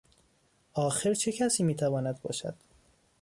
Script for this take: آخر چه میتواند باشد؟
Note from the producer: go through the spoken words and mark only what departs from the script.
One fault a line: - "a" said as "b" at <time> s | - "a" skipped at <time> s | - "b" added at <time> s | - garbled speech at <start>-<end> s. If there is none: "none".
- "کسی" added at 1.3 s